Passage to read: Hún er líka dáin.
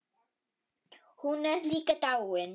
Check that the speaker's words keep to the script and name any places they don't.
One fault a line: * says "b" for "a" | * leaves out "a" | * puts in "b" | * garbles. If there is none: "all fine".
all fine